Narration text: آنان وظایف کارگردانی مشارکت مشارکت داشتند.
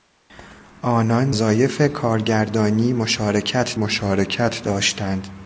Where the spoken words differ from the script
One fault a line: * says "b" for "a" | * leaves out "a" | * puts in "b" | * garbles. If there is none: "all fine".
all fine